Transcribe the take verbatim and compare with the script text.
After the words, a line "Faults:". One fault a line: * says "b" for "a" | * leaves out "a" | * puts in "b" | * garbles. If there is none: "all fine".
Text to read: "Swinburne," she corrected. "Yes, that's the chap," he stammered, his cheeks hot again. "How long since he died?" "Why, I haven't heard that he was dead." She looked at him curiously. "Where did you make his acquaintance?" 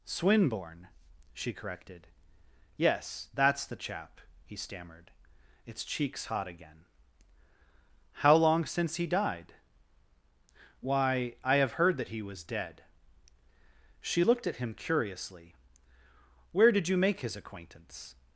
"Swinburne," she corrected. "Yes, that's the chap," he stammered, its cheeks hot again. "How long since he died?" "Why, I have heard that he was dead." She looked at him curiously. "Where did you make his acquaintance?"
Faults:
* says "its" for "his"
* says "have" for "haven't"